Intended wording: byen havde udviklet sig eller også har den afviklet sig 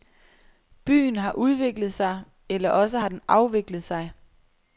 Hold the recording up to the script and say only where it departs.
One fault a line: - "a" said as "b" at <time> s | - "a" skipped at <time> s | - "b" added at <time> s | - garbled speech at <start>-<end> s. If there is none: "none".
- "havde" said as "har" at 1.1 s